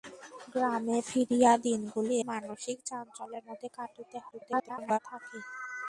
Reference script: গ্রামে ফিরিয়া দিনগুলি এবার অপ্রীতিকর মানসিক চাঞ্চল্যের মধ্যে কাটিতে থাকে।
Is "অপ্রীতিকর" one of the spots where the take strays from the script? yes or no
yes